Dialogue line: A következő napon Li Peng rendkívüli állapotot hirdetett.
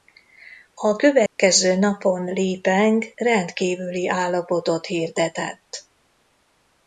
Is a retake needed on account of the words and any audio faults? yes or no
yes